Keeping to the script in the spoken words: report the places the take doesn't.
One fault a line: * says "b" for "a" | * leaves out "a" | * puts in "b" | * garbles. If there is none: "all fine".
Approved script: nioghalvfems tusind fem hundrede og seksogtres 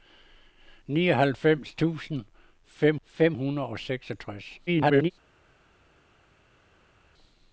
* puts in "fem"
* garbles